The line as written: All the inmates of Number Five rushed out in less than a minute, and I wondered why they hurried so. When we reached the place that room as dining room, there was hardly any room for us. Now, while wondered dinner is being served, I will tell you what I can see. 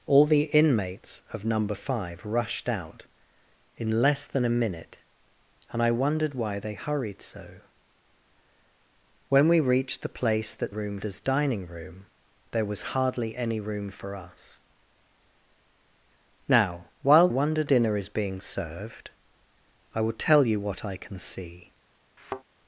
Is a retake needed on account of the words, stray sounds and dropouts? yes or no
yes